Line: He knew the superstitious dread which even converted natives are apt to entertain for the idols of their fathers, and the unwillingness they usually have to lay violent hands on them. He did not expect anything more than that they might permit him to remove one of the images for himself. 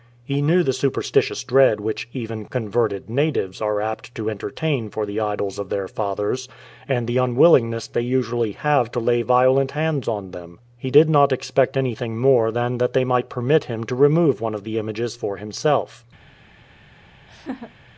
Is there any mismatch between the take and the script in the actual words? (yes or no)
no